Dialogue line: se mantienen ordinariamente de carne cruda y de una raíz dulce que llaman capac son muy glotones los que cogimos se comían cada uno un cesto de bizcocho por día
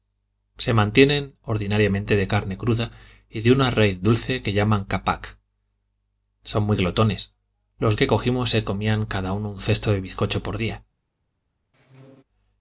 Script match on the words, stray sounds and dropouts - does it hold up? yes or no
no